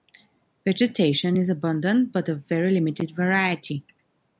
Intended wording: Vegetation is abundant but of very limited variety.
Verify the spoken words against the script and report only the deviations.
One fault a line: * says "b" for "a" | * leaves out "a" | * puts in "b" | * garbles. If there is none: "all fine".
all fine